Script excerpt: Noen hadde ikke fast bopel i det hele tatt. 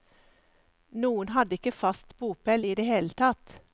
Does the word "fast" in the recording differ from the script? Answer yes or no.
no